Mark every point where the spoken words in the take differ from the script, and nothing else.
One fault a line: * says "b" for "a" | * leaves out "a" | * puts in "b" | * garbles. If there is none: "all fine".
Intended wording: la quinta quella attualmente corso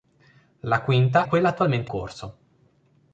all fine